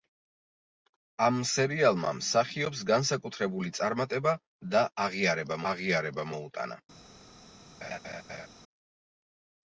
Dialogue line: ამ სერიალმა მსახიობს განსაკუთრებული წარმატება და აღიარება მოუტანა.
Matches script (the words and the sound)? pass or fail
fail